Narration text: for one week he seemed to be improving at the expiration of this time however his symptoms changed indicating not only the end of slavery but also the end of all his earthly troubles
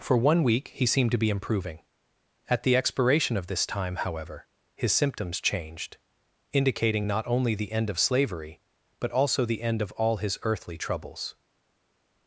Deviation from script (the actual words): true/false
false